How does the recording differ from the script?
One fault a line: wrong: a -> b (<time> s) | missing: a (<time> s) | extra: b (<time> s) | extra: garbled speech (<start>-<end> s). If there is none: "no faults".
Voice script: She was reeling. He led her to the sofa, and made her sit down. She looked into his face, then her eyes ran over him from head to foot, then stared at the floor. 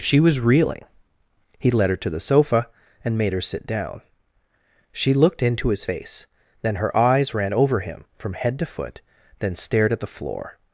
no faults